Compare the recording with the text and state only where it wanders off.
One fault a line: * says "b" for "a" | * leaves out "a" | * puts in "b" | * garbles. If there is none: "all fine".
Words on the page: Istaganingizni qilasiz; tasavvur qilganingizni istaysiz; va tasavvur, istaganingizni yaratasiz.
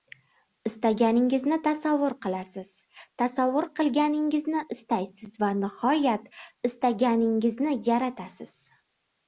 * puts in "tasavvur"
* says "nihoyat" for "tasavvur"